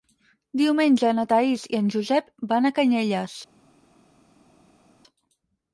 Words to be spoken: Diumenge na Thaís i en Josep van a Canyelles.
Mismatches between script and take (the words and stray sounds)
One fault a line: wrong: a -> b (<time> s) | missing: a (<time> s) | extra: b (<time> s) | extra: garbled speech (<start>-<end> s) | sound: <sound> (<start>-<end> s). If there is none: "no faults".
no faults